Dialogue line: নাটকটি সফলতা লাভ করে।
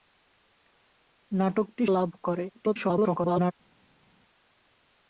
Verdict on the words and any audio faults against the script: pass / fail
fail